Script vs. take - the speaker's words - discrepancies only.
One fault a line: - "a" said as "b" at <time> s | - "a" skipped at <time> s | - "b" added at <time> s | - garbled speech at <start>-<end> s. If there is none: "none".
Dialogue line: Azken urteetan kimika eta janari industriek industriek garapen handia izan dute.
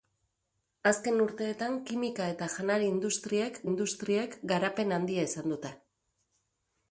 none